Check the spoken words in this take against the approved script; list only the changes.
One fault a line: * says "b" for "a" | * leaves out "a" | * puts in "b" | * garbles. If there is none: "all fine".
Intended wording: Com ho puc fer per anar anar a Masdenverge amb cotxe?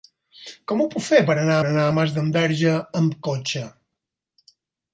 all fine